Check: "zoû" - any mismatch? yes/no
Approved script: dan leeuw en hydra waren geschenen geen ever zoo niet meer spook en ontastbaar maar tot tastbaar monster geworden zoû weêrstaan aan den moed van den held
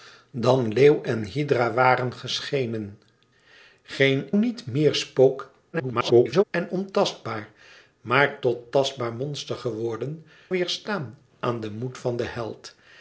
yes